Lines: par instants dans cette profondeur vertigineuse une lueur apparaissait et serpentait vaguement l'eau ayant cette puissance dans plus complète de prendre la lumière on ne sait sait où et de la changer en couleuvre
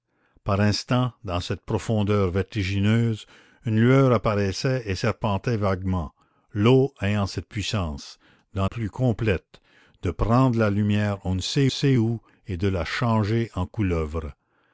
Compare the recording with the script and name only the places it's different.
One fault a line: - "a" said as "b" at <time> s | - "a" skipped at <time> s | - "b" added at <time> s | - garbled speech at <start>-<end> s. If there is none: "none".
none